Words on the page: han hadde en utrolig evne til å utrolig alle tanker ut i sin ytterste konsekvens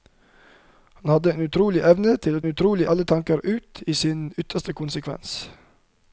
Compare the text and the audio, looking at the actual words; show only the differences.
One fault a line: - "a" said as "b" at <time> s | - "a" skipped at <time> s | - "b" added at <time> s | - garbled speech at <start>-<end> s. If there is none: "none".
none